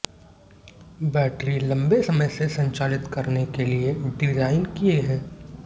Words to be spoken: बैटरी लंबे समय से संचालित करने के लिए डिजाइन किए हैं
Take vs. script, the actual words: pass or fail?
pass